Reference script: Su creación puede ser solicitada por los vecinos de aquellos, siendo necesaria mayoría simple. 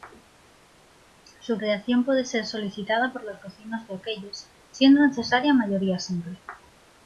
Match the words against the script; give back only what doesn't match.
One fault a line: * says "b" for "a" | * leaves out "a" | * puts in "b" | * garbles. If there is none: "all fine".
all fine